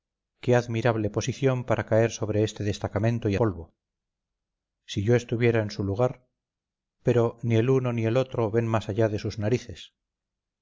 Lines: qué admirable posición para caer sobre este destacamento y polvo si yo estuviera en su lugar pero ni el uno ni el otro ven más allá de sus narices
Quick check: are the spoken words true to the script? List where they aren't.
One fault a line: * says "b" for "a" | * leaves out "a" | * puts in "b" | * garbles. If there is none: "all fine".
all fine